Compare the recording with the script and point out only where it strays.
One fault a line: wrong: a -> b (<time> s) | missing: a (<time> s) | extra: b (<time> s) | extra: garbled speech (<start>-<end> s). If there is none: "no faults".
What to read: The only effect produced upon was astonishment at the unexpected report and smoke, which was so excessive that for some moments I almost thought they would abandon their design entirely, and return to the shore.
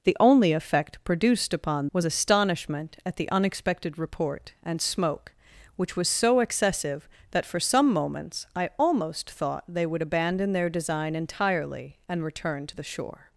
no faults